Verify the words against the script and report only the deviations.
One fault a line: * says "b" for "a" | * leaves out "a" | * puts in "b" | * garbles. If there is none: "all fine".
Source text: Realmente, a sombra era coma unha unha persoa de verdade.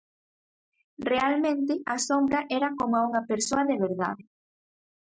* leaves out "unha"